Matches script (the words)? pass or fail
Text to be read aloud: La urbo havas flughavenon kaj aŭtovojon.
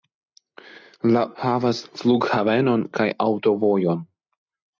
fail